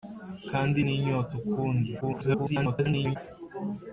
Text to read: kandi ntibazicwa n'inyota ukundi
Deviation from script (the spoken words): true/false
true